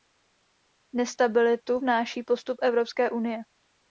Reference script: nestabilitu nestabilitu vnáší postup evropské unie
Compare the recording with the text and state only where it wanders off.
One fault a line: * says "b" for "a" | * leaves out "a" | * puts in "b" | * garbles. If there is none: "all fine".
* leaves out "nestabilitu"